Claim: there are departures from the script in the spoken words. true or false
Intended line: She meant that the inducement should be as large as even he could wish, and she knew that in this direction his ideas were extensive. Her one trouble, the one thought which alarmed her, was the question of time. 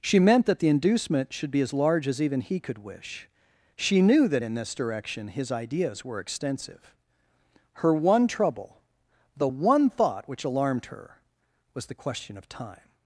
true